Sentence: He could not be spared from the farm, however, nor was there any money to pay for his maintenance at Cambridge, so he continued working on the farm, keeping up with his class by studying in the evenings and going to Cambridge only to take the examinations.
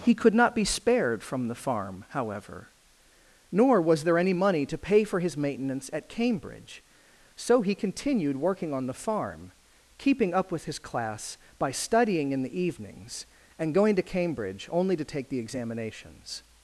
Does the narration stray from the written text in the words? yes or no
no